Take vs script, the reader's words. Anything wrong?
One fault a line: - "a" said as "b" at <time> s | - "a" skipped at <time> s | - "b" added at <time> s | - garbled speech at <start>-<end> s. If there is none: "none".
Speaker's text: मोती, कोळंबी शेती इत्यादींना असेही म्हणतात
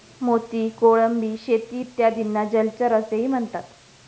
- "जलचर" added at 2.5 s